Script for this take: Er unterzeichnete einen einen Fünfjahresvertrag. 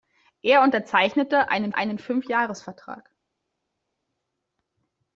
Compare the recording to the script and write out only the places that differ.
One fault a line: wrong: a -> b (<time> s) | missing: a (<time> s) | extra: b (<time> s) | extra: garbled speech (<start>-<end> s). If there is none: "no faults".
no faults